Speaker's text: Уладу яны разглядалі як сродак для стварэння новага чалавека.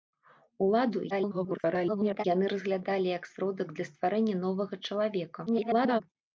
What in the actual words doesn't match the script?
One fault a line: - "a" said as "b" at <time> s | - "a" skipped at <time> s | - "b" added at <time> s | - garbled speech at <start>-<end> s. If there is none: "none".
- garbled speech at 1.1-2.2 s
- garbled speech at 5.5-6.0 s